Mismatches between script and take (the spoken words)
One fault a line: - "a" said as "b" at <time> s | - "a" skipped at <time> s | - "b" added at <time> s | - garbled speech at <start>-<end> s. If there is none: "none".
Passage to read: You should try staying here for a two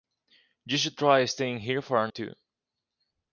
none